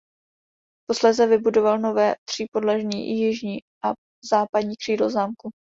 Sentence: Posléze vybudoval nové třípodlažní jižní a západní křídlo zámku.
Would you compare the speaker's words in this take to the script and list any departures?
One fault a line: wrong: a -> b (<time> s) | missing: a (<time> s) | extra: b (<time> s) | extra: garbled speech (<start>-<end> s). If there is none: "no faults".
no faults